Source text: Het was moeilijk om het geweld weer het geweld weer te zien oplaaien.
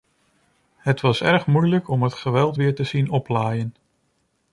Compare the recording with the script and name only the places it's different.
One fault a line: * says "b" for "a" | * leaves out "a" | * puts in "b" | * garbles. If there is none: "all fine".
* puts in "erg"
* leaves out "het geweld weer"